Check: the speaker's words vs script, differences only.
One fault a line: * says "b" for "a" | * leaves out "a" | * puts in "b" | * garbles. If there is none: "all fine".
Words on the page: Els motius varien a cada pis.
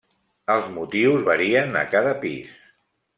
all fine